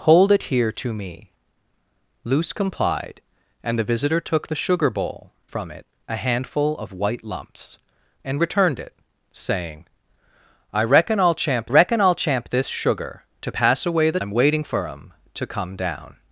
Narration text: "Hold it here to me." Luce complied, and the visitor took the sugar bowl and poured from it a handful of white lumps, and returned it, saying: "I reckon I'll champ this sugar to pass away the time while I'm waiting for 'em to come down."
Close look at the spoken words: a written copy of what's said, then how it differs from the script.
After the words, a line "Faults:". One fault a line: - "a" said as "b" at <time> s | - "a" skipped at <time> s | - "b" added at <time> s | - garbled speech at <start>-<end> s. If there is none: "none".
"Hold it here to me." Luce complied, and the visitor took the sugar bowl from it a handful of white lumps, and returned it, saying: "I reckon I'll champ reckon I'll champ this sugar to pass away the I'm waiting for 'em to come down."
Faults:
- "and poured" skipped at 5.3 s
- "reckon I'll champ" added at 11.7 s
- "time while" skipped at 14.2 s